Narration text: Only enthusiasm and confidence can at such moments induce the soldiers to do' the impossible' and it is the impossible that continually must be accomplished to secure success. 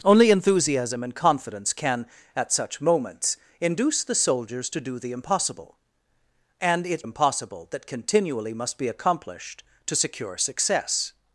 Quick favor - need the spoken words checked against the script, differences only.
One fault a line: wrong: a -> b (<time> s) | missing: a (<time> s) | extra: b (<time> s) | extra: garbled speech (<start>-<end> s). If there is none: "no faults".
missing: is the (7.0 s)